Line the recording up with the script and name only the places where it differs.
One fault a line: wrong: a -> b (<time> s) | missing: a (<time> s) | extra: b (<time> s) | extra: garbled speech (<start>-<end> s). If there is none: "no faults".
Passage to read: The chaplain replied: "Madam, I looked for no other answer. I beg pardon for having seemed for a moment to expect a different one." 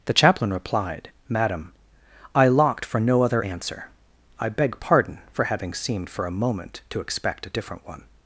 wrong: looked -> locked (2.5 s)